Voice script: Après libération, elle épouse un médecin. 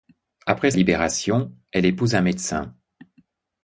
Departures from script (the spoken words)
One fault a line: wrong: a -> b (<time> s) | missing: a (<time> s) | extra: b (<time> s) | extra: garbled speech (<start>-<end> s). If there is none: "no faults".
no faults